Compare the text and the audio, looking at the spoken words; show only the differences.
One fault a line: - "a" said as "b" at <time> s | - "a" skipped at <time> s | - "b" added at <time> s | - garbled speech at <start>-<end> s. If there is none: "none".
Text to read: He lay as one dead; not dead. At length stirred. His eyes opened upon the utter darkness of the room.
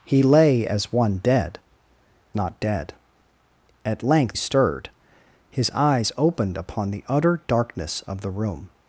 none